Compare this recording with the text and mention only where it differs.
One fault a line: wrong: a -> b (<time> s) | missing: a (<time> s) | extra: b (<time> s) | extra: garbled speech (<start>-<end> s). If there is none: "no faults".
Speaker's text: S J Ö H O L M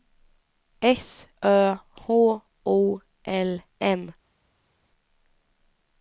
missing: J (1.3 s)